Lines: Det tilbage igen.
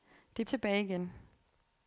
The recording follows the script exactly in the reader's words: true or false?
true